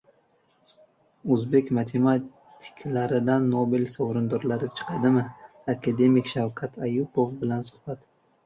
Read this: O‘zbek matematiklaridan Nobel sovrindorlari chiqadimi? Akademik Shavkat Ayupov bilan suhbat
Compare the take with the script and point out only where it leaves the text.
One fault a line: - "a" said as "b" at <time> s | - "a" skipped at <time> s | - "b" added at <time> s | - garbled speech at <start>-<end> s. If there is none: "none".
none